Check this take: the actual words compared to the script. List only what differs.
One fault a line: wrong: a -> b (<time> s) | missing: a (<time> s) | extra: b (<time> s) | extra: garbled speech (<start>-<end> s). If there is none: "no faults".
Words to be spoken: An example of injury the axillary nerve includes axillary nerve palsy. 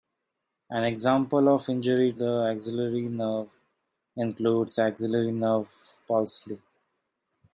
no faults